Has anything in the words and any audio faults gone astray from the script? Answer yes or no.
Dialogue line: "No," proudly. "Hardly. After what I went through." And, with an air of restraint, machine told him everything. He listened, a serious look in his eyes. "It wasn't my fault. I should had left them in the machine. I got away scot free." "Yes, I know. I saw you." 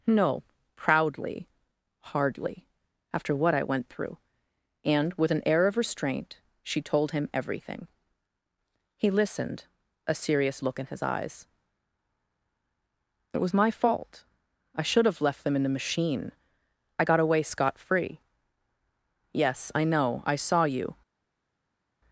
yes